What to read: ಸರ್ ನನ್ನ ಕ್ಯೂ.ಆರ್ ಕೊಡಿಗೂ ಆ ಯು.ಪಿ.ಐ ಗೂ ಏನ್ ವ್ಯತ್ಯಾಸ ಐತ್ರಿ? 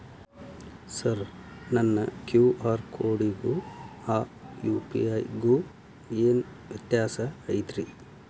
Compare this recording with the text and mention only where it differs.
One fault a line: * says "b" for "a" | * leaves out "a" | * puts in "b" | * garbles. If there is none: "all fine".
all fine